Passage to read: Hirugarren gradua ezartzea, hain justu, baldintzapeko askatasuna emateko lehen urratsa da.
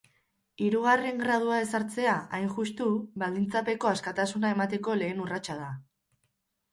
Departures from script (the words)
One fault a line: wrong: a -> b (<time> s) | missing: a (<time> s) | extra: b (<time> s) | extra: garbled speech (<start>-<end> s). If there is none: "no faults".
no faults